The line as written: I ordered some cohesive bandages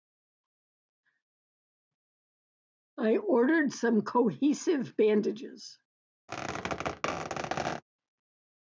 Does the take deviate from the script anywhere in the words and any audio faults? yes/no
yes